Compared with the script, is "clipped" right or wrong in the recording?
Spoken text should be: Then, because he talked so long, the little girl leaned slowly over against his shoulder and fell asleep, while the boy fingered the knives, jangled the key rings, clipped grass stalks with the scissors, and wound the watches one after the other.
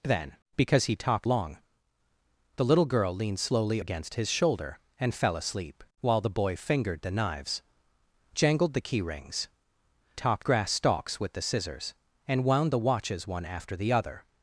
wrong